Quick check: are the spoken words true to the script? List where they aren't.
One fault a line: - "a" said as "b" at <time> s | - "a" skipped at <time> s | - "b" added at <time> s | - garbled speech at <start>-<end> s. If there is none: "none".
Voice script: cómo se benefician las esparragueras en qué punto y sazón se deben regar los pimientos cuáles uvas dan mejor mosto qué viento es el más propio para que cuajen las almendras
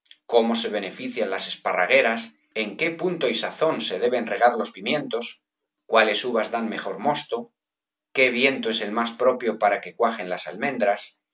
none